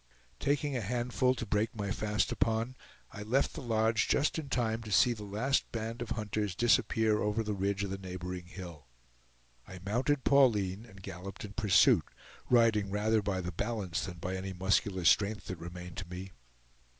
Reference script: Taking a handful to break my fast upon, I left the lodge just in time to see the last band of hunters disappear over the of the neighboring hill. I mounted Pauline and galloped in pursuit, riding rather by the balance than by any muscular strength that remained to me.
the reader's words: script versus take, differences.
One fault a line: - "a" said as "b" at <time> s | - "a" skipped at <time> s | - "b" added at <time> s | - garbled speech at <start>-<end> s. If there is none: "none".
- "ridge" added at 7.5 s